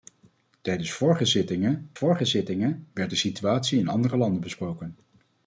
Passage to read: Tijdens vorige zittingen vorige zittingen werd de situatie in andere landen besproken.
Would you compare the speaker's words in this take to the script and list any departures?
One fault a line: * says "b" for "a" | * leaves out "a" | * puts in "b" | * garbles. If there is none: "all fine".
all fine